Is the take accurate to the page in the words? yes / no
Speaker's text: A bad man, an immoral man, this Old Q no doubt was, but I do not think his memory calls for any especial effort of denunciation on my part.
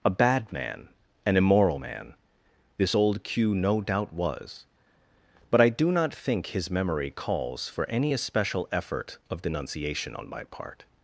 yes